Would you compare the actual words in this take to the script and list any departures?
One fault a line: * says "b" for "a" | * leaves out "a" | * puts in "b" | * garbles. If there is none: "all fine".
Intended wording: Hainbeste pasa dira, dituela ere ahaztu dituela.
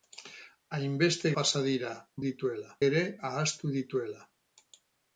all fine